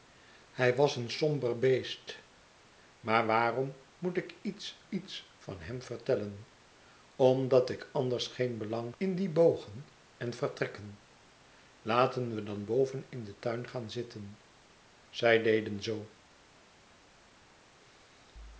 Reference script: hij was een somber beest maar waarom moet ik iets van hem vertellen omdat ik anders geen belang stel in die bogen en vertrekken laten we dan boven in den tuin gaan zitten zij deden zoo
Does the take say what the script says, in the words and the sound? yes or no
no